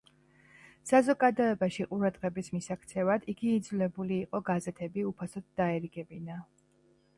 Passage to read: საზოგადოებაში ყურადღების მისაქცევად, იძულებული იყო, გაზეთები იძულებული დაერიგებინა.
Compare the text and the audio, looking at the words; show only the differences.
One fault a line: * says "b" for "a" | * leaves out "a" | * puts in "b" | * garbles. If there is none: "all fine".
* puts in "იგი"
* says "უფასოდ" for "იძულებული"